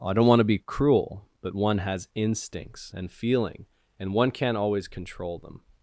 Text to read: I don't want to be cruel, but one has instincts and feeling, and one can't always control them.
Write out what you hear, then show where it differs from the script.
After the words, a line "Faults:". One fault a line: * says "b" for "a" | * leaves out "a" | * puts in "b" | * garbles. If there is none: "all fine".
I don't want to be cruel, but one has instincts and feeling, and one can't always control them.
Faults:
all fine